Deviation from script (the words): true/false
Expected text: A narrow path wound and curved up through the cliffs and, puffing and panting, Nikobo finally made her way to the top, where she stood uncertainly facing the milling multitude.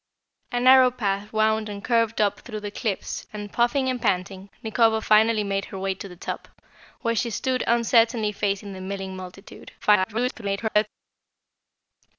true